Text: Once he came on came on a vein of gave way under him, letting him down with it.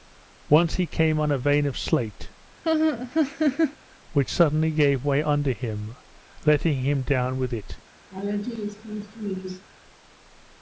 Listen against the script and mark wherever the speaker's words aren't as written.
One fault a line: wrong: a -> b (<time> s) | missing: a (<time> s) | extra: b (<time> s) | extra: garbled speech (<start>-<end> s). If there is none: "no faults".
missing: came on (1.3 s)
extra: slate which suddenly (1.8 s)